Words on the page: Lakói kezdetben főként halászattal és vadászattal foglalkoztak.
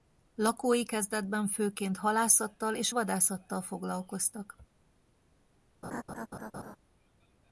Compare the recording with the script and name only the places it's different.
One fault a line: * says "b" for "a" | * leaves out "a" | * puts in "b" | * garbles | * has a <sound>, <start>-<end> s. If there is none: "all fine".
* has a laugh, 5.8-6.8 s